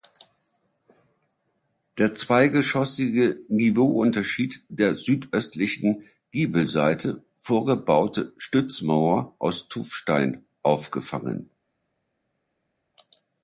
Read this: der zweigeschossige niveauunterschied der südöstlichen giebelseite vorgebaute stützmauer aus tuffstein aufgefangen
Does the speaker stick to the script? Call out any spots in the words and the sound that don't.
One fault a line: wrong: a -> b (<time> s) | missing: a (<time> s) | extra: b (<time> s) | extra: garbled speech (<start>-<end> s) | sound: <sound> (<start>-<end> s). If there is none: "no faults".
no faults